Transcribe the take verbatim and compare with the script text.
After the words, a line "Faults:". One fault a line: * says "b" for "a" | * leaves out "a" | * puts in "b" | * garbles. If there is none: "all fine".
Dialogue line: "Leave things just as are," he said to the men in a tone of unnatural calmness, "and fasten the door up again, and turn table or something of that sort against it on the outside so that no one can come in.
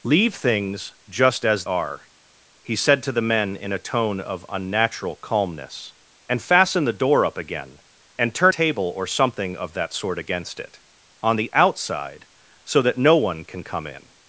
"Leave things just as are," he said to the men in a tone of unnatural calmness, "and fasten the door up again, and turn table or something of that sort against it on the outside so that no one can come in.
Faults:
all fine